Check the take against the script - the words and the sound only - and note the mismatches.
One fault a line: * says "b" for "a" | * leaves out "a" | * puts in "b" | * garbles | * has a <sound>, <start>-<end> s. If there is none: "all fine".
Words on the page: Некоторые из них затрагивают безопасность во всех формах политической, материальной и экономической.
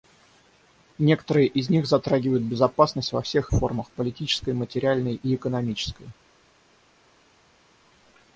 all fine